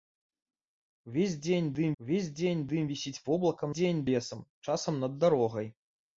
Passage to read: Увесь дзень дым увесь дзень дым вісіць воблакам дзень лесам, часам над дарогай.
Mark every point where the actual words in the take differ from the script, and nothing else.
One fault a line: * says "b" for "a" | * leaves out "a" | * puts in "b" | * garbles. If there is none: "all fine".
all fine